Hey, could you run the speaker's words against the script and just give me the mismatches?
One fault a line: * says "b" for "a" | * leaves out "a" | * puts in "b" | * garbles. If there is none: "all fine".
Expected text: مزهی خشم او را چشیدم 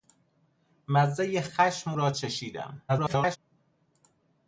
* leaves out "او"
* garbles